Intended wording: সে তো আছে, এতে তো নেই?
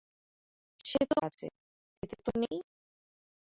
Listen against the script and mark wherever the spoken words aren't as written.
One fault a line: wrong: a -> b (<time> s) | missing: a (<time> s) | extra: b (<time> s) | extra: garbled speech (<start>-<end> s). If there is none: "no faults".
no faults